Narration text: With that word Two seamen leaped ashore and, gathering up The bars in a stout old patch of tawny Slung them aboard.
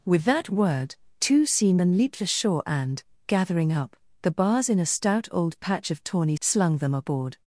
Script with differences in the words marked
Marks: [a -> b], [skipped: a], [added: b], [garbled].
With that word Two seamen leaped ashore and, gathering up The bars in a stout old patch of tawny Slung them aboard.